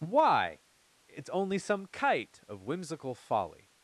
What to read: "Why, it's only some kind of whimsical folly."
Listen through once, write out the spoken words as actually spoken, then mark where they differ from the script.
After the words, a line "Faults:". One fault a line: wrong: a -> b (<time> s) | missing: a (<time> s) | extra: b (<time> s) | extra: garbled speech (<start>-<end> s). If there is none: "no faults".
"Why, it's only some kite of whimsical folly."
Faults:
wrong: kind -> kite (1.9 s)